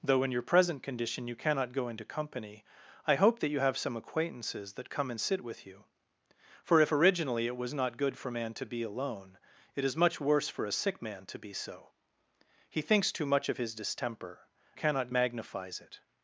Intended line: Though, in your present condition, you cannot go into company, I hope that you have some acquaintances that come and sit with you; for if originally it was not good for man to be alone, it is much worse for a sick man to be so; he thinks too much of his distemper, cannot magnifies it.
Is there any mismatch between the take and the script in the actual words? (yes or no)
no